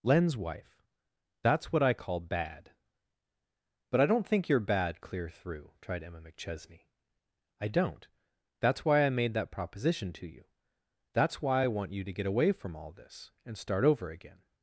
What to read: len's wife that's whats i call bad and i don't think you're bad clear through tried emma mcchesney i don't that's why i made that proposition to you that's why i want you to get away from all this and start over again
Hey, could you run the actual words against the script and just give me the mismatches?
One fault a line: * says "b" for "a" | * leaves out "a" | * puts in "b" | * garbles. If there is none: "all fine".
* says "what" for "whats"
* says "but" for "and"